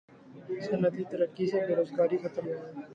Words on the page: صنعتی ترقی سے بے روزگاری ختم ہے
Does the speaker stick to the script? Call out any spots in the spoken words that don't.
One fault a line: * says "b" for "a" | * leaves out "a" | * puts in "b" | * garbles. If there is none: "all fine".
all fine